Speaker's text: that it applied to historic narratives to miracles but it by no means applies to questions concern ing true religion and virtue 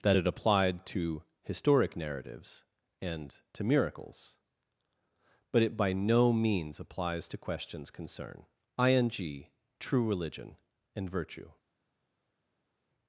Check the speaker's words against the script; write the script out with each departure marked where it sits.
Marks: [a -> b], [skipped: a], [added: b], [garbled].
that it applied to historic narratives [added: and] to miracles but it by no means applies to questions concern ing true religion and virtue